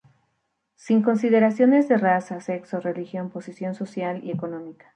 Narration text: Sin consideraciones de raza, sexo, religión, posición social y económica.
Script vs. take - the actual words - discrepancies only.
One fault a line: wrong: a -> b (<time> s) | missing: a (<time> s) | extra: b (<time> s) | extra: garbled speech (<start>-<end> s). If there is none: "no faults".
no faults